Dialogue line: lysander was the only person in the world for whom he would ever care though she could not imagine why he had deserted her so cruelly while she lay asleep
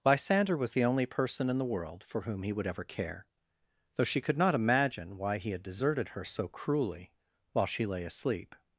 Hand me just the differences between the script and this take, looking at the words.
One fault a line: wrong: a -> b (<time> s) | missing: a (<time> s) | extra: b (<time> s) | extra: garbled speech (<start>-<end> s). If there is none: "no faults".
no faults